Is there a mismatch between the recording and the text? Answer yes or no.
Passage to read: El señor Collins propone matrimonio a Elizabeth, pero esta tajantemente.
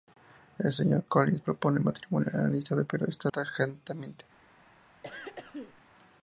no